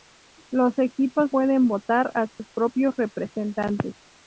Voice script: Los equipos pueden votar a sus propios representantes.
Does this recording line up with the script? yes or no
yes